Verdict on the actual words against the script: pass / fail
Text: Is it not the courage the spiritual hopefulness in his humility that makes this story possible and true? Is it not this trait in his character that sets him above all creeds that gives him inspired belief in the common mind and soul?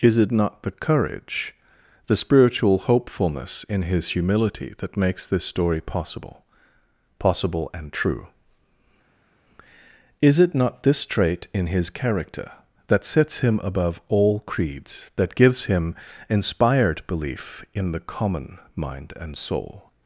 fail